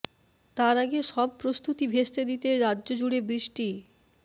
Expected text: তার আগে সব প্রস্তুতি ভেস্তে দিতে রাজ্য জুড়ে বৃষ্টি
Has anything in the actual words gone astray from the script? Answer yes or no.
no